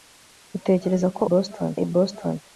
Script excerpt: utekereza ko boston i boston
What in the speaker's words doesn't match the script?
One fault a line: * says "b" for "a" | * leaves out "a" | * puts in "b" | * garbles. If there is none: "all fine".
all fine